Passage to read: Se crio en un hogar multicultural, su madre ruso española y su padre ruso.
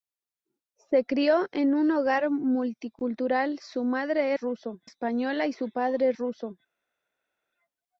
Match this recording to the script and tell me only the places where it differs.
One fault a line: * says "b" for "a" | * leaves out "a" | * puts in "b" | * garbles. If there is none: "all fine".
all fine